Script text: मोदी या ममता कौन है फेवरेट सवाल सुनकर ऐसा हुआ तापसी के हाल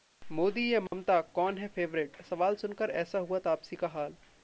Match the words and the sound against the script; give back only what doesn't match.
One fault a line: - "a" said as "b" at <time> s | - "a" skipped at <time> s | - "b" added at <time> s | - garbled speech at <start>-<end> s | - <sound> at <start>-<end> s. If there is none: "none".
- dropout at 0.9-0.9 s
- "के" said as "का" at 3.8 s